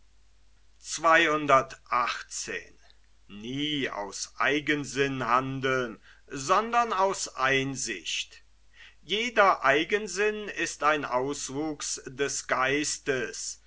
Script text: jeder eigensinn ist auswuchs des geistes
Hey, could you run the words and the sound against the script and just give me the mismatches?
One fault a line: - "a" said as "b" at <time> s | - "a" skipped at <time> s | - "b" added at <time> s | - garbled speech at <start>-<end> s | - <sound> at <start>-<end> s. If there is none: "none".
- "ein" added at 10.8 s